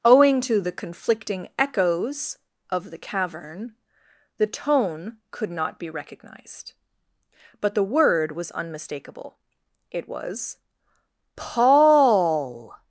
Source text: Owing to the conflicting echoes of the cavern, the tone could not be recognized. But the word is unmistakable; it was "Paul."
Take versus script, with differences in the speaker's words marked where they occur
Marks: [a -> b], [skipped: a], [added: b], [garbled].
Owing to the conflicting echoes of the cavern, the tone could not be recognized. But the word [is -> was] unmistakable; it was "Paul."